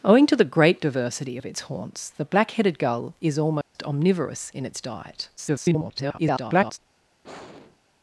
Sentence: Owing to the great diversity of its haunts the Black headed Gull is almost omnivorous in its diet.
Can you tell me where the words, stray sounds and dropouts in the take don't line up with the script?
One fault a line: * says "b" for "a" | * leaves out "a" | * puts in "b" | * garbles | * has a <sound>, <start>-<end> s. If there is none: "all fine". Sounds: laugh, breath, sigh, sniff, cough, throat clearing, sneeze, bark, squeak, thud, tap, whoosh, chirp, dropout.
* has a dropout, 3.6-3.8 s
* garbles
* has a sigh, 7.2-7.8 s